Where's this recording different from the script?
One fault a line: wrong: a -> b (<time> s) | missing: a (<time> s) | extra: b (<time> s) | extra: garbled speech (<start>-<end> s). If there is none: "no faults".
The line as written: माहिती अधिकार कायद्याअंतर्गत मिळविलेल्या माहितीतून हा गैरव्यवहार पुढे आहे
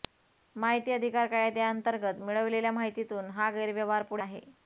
no faults